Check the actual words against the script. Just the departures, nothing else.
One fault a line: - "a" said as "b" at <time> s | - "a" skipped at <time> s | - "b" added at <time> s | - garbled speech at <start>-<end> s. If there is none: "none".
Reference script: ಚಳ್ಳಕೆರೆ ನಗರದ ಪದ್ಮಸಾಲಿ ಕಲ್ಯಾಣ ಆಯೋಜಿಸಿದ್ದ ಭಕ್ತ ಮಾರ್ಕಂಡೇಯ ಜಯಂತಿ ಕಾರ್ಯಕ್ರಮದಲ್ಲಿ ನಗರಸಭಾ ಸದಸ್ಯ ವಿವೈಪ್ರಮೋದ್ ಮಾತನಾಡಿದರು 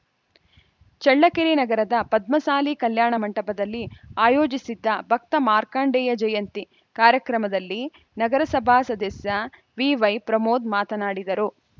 - "ಮಂಟಪದಲ್ಲಿ" added at 3.2 s